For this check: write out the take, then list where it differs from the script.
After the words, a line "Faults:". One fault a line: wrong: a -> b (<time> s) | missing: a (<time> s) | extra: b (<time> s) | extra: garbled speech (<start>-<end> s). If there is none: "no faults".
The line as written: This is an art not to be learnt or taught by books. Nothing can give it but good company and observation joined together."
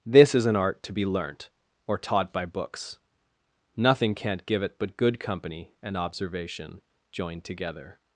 This is an art to be learnt or taught by books. Nothing can't give it but good company and observation joined together."
Faults:
missing: not (0.8 s)
wrong: can -> can't (4.2 s)